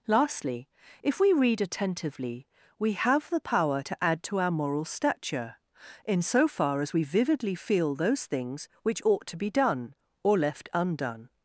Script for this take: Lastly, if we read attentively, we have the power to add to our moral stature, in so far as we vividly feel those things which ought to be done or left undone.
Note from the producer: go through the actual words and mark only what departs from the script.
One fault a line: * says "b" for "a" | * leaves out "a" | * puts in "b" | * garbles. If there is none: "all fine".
all fine